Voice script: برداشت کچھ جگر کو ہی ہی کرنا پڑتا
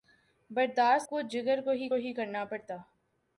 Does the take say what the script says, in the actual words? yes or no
yes